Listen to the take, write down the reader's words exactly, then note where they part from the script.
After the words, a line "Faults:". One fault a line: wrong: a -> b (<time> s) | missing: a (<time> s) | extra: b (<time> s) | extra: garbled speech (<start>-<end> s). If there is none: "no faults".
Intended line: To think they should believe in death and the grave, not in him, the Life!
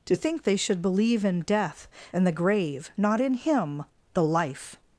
To think they should believe in death and the grave, not in him, the Life!
Faults:
no faults